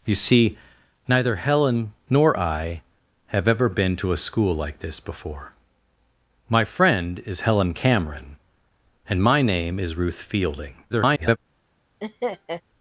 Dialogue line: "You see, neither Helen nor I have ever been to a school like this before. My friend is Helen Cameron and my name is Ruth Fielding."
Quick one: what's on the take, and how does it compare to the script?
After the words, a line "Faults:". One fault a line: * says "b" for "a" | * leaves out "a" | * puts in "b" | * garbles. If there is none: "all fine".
"You see, neither Helen nor I have ever been to a school like this before. My friend is Helen Cameron and my name is Ruth Fielding." [garbled]
Faults:
* garbles